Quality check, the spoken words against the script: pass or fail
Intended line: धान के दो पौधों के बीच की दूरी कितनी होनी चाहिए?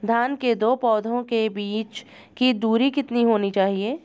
pass